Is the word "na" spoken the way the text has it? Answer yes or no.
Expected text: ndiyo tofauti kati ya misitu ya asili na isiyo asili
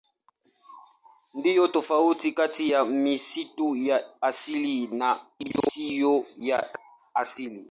yes